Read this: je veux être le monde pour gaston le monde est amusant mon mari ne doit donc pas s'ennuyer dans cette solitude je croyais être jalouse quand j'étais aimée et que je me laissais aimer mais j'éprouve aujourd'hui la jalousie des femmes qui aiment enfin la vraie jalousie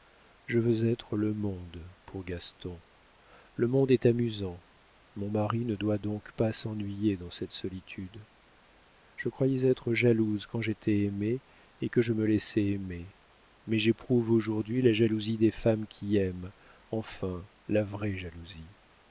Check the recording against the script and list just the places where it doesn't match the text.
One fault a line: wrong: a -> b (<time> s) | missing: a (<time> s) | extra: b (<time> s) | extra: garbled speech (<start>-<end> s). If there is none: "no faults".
no faults